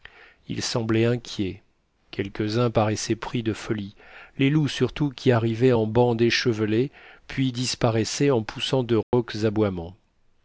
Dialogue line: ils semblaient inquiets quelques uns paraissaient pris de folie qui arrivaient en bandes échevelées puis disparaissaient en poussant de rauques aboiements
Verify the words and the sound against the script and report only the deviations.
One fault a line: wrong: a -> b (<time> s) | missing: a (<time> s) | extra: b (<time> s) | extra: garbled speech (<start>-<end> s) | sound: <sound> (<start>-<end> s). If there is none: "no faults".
extra: les loups surtout (4.4 s)
sound: dropout (9.0-9.1 s)